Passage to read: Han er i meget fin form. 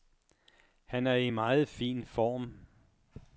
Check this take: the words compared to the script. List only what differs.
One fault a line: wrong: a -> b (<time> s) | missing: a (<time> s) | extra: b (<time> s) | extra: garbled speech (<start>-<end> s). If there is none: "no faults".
no faults